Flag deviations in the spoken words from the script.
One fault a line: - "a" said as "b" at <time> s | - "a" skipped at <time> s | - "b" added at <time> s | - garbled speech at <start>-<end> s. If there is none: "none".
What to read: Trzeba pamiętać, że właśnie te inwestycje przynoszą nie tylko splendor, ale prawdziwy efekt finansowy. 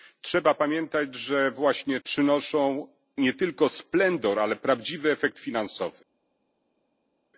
- "te inwestycje" skipped at 2.0 s